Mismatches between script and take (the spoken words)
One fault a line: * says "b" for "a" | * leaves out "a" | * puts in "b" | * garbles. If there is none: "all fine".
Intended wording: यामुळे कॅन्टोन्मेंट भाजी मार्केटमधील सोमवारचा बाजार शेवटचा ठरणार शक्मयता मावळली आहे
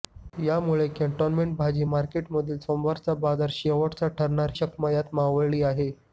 all fine